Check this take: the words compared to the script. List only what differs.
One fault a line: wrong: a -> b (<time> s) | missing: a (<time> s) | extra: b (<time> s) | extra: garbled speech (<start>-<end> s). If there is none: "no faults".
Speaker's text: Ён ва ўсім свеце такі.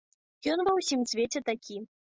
no faults